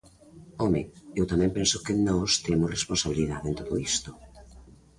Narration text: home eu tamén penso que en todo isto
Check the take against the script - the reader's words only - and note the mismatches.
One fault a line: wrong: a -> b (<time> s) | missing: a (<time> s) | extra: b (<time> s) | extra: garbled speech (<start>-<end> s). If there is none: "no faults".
extra: nós temos responsabilidade (2.1 s)